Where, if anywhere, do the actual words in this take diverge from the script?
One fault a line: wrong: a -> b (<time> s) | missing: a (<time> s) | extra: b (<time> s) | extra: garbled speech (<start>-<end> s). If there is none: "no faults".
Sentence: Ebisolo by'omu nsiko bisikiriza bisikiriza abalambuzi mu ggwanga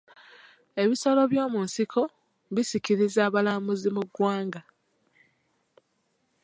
missing: bisikiriza (3.2 s)